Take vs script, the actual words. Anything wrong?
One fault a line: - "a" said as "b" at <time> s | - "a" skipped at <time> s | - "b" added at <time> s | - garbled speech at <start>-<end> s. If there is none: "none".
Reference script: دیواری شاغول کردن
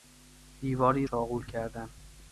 none